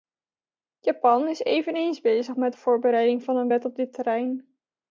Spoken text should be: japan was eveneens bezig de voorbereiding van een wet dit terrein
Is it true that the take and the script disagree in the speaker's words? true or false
true